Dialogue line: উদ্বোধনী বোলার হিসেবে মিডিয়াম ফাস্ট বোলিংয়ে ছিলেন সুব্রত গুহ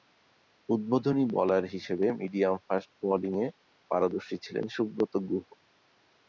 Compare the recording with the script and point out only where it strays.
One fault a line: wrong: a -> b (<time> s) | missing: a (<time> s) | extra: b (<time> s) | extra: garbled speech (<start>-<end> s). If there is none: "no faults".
extra: পারদর্শী (3.9 s)